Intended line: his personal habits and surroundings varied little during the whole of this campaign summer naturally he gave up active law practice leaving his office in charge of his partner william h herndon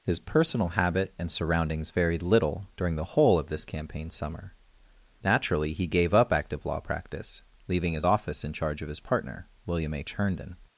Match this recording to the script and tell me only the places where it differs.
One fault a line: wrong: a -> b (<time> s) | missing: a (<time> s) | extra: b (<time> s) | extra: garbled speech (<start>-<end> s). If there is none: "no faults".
wrong: habits -> habit (0.7 s)